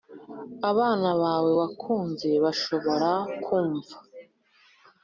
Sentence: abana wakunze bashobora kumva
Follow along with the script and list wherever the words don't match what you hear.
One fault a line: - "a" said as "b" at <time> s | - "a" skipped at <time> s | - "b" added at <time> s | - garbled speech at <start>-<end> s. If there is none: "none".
- "bawe" added at 1.2 s